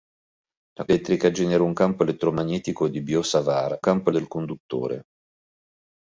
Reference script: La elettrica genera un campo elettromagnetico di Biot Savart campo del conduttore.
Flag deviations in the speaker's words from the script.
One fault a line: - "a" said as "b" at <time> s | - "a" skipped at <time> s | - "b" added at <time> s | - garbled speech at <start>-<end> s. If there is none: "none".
none